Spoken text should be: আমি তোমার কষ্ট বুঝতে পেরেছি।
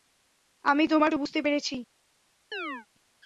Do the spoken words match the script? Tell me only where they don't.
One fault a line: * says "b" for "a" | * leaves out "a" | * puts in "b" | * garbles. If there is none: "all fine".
* leaves out "কষ্ট"